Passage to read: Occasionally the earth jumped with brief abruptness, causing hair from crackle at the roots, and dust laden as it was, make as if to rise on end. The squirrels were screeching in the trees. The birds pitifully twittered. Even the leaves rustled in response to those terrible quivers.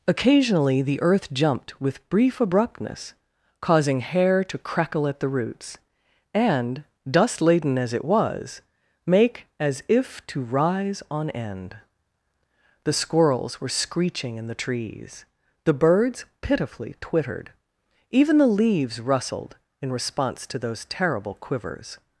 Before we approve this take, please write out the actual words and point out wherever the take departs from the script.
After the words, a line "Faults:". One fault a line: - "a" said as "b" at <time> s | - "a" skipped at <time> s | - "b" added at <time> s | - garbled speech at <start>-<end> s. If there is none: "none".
Occasionally the earth jumped with brief abruptness, causing hair to crackle at the roots, and dust laden as it was, make as if to rise on end. The squirrels were screeching in the trees. The birds pitifully twittered. Even the leaves rustled in response to those terrible quivers.
Faults:
- "from" said as "to" at 4.4 s